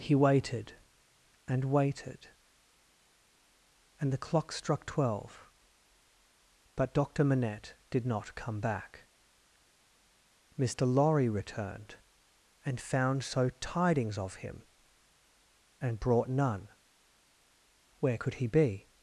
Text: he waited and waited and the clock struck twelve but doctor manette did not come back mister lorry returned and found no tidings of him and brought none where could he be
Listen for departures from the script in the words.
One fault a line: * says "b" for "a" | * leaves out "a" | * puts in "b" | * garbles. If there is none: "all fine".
* says "so" for "no"